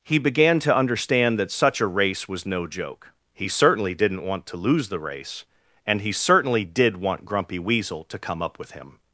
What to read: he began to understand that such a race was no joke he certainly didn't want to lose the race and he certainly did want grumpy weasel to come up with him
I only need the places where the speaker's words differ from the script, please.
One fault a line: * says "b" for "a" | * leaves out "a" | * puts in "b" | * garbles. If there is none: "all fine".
all fine